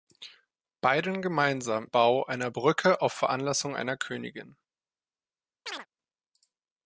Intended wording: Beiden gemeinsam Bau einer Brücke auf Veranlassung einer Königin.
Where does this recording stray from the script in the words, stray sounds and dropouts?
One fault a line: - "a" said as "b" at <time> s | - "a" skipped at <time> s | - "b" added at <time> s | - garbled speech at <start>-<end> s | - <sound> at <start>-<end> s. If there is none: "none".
- chirp at 5.7-5.9 s